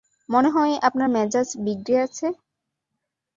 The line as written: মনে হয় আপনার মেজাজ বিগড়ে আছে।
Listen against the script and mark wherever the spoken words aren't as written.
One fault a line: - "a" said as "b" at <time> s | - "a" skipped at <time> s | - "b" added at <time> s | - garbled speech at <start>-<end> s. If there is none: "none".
none